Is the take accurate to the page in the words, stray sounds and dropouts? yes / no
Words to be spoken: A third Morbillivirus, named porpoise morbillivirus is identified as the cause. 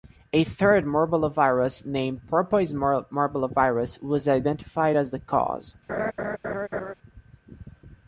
no